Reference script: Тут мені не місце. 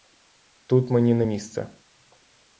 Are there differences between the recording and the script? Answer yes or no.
no